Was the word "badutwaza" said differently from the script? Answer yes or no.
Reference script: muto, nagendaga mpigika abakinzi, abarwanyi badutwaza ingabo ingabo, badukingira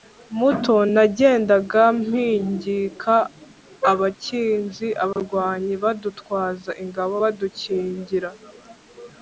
no